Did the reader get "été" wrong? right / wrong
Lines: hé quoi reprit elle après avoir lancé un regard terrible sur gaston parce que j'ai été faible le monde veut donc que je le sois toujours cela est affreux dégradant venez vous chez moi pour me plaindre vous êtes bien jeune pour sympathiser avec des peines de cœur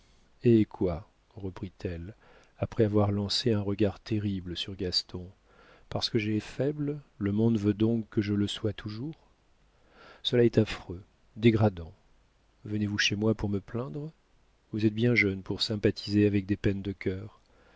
wrong